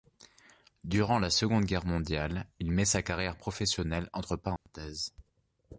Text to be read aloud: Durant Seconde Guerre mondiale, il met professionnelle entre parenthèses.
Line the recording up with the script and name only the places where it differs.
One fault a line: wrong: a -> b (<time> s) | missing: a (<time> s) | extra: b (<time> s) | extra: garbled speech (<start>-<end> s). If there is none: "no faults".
extra: la (1.2 s)
extra: sa carrière (2.9 s)